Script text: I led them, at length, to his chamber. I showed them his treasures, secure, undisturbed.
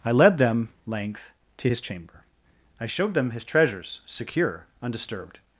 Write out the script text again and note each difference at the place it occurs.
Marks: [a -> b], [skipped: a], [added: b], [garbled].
I led them, [skipped: at] length, to his chamber. I showed them his treasures, secure, undisturbed.